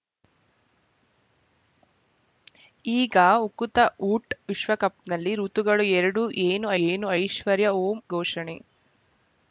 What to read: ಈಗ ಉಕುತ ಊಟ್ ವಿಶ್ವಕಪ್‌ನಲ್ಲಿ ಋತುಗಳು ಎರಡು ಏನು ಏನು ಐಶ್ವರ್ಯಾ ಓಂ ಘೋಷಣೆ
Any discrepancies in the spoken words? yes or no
no